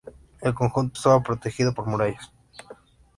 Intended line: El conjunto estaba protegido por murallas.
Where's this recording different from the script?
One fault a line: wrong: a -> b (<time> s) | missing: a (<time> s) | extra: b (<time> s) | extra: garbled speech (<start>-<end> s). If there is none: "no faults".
no faults